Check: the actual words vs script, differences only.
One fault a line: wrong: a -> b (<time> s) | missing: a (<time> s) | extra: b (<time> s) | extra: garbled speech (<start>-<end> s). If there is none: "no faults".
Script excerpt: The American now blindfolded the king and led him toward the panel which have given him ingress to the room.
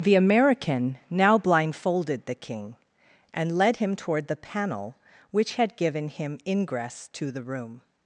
wrong: have -> had (5.5 s)